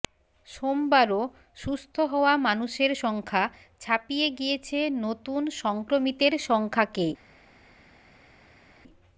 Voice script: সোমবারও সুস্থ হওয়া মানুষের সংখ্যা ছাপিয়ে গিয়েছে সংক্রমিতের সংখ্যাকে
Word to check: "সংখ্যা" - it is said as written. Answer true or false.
true